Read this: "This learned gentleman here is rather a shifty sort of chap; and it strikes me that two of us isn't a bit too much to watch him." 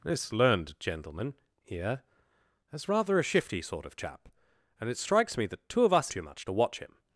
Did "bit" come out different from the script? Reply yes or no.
yes